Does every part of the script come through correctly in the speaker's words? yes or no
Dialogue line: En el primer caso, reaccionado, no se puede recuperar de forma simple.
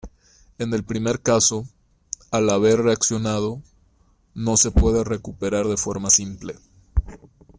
no